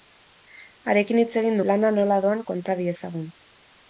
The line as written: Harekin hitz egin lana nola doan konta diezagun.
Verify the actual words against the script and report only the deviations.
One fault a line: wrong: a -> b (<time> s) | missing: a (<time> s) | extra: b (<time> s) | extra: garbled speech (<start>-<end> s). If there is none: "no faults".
no faults